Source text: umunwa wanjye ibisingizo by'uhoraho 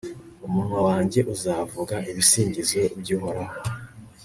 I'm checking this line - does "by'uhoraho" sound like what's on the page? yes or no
yes